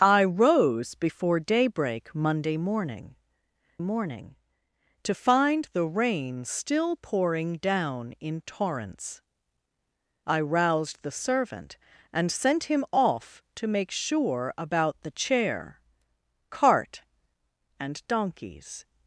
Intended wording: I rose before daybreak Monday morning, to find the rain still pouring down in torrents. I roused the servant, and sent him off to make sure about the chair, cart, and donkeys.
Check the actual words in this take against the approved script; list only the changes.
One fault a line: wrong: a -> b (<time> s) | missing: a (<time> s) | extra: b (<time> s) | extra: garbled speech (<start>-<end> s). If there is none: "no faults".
extra: morning (3.8 s)